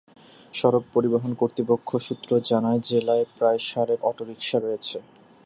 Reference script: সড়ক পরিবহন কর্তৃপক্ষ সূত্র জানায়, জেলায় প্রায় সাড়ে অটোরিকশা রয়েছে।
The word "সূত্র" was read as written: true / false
true